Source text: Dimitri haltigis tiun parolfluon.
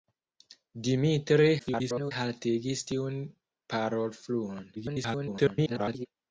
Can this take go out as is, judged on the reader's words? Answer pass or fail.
fail